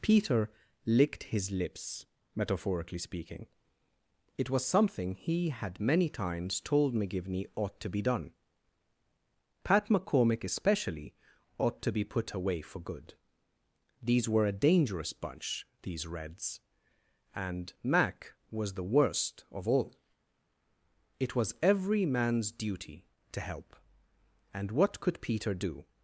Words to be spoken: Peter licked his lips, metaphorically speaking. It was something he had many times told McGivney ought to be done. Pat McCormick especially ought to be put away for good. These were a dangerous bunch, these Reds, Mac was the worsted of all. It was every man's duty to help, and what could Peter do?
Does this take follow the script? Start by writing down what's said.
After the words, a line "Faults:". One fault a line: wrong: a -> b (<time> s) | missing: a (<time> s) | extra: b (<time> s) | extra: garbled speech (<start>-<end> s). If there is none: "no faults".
Peter licked his lips, metaphorically speaking. It was something he had many times told McGivney ought to be done. Pat McCormick especially ought to be put away for good. These were a dangerous bunch, these Reds, and Mac was the worst of all. It was every man's duty to help, and what could Peter do?
Faults:
extra: and (17.4 s)
wrong: worsted -> worst (18.8 s)